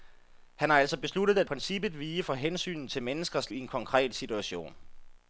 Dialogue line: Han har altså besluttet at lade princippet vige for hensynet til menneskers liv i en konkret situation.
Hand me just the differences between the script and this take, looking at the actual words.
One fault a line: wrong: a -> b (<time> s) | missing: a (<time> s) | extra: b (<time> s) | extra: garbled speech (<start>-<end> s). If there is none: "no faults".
missing: lade (1.5 s)
missing: liv (3.5 s)